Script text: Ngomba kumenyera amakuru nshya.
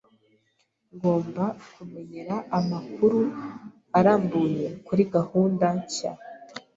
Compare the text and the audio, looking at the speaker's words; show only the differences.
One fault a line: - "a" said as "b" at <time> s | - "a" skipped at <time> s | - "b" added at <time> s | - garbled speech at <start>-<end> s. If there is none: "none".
- "arambuye kuri gahunda" added at 4.0 s